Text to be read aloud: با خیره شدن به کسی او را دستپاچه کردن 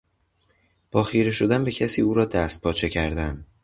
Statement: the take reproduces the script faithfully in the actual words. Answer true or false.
true